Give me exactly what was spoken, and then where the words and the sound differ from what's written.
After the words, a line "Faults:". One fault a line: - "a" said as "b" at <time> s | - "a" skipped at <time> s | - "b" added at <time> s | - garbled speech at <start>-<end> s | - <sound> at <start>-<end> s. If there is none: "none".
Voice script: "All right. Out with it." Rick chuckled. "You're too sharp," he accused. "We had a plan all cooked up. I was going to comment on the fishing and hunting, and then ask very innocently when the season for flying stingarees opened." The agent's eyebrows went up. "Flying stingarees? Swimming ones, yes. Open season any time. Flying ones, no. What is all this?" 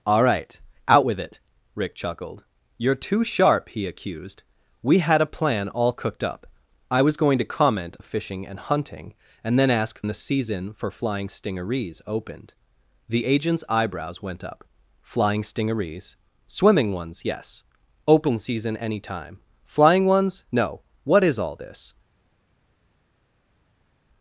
"All right. Out with it." Rick chuckled. "You're too sharp," he accused. "We had a plan all cooked up. I was going to comment the fishing and hunting, and then ask the season for flying stingarees opened." The agent's eyebrows went up. "Flying stingarees? Swimming ones, yes. Open season any time. Flying ones, no. What is all this?"
Faults:
- "on" skipped at 8.0 s
- "very innocently when" skipped at 10.0 s